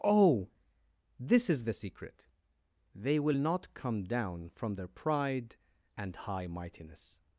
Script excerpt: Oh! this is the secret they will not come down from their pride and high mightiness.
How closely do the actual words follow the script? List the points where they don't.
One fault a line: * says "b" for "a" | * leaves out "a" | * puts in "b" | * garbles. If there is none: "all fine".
all fine